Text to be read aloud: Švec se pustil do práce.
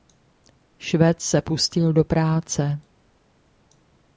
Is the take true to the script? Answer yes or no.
yes